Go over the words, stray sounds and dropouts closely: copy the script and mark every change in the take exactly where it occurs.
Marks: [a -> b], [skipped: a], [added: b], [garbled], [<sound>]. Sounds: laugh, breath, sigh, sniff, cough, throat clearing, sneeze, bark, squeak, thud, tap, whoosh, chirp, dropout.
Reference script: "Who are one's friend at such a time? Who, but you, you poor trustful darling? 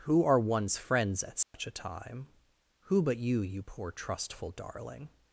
"Who are one's [friend -> friends] at such [dropout] a time? Who, but you, you poor trustful darling?